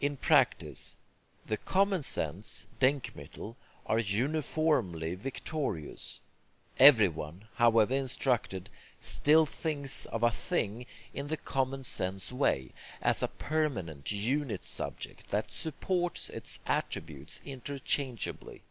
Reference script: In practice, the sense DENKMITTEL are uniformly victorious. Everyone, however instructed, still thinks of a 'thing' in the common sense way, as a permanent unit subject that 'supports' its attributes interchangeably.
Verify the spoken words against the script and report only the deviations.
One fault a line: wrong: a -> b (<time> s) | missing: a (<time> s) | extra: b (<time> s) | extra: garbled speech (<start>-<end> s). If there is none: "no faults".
extra: common (1.6 s)